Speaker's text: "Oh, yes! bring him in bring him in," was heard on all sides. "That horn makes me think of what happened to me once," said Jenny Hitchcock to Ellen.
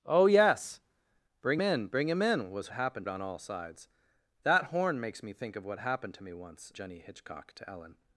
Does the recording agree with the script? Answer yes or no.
no